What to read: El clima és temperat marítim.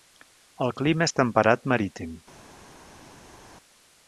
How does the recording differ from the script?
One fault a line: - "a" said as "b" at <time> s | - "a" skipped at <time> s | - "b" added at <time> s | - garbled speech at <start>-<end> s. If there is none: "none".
none